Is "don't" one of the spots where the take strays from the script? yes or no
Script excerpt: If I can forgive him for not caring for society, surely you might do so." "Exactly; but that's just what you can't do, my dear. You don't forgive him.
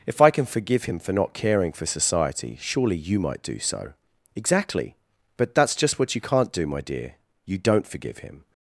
no